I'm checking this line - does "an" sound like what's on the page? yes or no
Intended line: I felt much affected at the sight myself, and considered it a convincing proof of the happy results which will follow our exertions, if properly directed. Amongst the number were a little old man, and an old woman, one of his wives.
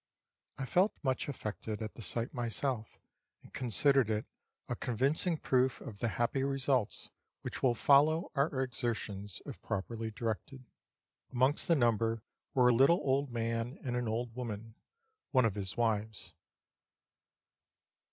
yes